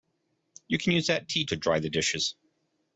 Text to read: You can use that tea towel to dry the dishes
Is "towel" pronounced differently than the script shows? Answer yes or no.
yes